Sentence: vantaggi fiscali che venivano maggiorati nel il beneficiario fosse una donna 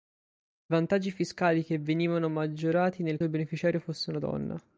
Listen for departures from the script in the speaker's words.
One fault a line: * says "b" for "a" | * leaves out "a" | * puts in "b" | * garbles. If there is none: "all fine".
all fine